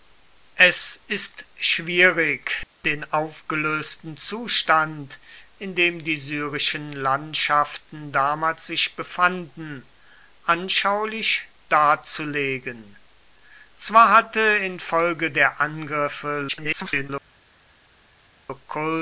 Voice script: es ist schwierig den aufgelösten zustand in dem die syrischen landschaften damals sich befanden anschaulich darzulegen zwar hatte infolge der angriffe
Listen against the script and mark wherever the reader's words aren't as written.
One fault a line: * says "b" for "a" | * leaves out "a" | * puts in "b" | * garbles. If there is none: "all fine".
* garbles